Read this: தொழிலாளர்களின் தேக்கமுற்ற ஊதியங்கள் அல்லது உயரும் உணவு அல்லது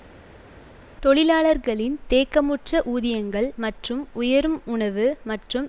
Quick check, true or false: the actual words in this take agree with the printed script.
false